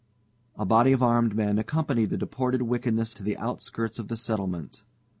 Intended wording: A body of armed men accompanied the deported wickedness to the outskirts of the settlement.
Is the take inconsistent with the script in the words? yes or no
no